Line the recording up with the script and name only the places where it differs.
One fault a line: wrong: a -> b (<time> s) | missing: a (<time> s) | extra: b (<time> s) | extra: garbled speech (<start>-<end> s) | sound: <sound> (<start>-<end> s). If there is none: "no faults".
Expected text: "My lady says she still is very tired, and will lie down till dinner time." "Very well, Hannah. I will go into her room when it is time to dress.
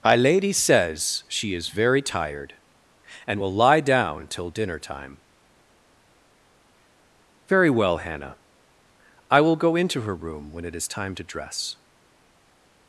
missing: still (1.5 s)